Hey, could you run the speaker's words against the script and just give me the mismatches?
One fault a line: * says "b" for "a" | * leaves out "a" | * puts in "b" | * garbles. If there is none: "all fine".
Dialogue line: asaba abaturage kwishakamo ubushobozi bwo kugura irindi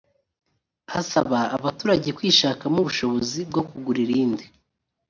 all fine